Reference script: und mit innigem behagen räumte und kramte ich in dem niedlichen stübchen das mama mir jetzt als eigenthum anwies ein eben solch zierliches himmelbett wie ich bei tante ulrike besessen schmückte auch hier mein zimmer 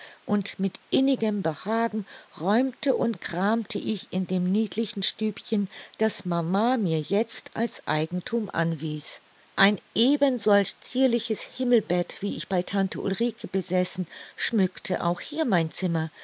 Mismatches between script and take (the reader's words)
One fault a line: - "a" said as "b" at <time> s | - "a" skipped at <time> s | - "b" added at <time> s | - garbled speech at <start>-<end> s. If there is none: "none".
none